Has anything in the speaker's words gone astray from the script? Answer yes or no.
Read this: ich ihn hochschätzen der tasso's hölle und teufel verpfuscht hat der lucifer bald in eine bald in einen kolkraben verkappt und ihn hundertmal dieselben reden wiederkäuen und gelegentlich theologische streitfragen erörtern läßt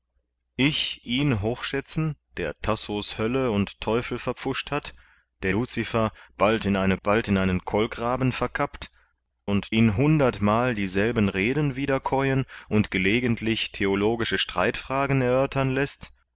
no